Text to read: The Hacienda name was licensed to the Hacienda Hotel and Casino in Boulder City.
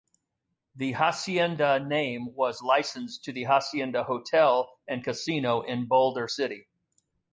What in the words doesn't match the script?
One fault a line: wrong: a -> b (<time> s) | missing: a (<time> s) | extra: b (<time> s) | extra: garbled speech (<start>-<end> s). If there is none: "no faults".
no faults